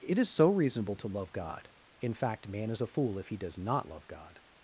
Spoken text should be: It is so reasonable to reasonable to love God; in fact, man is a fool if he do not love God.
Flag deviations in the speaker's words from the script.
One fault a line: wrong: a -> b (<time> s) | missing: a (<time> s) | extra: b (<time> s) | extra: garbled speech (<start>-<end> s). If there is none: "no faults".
missing: reasonable to (1.1 s)
wrong: do -> does (3.4 s)